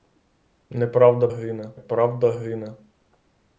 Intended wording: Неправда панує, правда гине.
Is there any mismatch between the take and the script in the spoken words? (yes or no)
yes